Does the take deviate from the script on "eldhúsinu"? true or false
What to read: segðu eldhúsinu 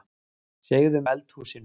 false